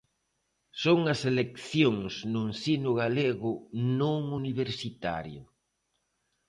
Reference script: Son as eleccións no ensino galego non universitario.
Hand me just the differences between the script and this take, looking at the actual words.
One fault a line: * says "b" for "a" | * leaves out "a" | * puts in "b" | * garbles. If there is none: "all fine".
all fine